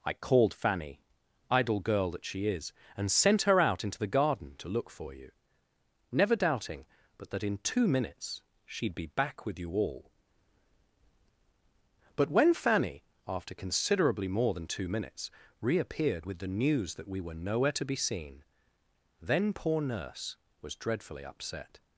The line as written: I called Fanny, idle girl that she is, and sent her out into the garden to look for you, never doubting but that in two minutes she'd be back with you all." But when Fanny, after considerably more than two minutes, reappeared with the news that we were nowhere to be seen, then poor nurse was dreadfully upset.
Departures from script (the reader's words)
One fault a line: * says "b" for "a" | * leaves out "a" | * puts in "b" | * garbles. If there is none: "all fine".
all fine